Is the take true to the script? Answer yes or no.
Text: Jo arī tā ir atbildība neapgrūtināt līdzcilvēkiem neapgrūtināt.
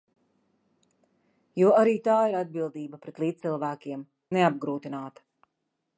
no